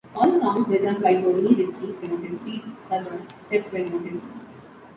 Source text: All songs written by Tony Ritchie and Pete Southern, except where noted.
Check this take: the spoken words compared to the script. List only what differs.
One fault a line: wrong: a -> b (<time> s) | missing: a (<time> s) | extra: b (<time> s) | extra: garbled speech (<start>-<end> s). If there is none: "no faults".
wrong: and -> noted (2.0 s)